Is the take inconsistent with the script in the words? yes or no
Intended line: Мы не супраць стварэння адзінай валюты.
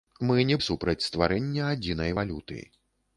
no